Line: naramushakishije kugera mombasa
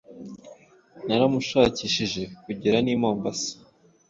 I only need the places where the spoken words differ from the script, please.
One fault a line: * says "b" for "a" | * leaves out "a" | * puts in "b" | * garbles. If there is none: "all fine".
* puts in "n'i"